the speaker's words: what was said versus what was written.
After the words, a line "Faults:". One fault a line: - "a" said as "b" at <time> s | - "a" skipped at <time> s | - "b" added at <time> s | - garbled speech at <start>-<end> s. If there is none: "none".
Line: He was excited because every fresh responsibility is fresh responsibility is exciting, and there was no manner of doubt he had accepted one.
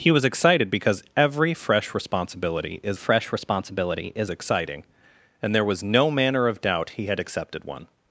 He was excited because every fresh responsibility is fresh responsibility is exciting, and there was no manner of doubt he had accepted one.
Faults:
none